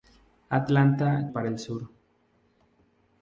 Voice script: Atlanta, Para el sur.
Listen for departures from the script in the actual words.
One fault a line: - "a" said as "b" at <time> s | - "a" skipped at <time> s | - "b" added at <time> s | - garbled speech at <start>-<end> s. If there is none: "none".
none